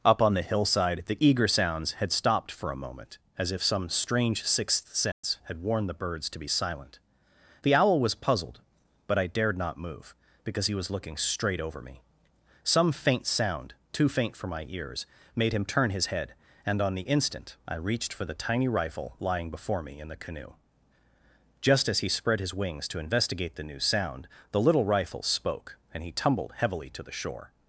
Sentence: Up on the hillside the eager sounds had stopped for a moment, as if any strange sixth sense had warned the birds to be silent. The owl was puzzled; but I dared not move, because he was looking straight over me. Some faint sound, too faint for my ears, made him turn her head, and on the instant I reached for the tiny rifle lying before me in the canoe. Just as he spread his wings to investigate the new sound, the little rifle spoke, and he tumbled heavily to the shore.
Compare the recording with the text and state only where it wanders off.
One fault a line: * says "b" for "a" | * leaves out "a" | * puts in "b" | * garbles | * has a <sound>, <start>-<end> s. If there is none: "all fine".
* says "some" for "any"
* has a dropout, 5.1-5.2 s
* says "his" for "her"